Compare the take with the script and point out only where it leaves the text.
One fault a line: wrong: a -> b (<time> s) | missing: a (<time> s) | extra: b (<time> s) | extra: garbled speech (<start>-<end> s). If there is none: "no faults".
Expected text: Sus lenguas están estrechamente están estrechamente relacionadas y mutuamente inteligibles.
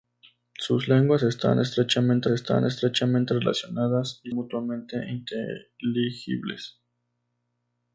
no faults